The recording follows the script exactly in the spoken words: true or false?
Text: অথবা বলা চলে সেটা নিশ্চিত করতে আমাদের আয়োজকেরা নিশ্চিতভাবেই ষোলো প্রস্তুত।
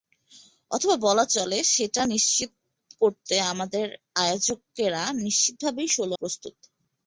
true